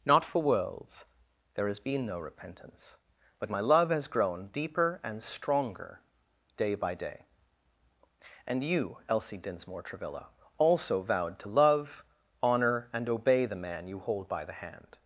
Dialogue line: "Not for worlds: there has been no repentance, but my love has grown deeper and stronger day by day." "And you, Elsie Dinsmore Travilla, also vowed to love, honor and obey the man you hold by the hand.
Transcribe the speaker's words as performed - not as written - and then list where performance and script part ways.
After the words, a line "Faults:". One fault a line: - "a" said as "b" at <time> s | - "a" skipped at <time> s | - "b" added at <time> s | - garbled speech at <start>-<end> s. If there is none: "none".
"Not for worlds: there has been no repentance, but my love has grown deeper and stronger day by day." "And you, Elsie Dinsmore Travilla, also vowed to love, honor and obey the man you hold by the hand.
Faults:
none